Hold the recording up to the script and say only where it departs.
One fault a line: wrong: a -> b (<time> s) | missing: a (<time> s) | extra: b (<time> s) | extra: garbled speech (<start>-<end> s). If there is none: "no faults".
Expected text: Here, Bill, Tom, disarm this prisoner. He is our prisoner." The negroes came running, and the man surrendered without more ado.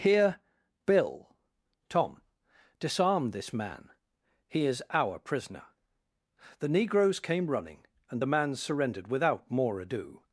wrong: prisoner -> man (3.5 s)